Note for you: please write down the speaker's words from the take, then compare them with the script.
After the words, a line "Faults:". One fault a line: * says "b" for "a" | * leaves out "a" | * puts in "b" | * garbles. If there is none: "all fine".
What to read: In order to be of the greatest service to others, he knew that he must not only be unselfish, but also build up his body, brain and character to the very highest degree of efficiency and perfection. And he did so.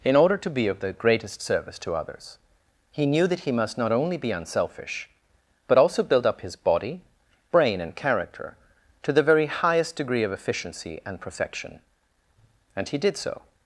In order to be of the greatest service to others, he knew that he must not only be unselfish, but also build up his body, brain and character to the very highest degree of efficiency and perfection. And he did so.
Faults:
all fine